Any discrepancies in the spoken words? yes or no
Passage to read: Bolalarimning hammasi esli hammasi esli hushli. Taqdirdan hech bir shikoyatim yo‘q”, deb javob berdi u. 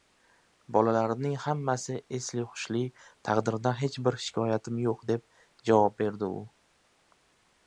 yes